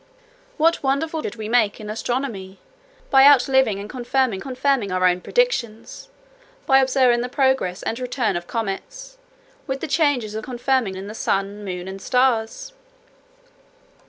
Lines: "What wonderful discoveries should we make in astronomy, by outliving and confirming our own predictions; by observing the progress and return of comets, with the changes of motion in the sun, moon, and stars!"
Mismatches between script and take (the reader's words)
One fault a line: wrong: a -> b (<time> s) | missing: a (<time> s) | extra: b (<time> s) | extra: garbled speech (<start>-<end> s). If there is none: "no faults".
missing: discoveries (1.2 s)
extra: confirming (4.4 s)
wrong: motion -> confirming (10.4 s)